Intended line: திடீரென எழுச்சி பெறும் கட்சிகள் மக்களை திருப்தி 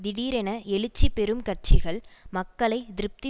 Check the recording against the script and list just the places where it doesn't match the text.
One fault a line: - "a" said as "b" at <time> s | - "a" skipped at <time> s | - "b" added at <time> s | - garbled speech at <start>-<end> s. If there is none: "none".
none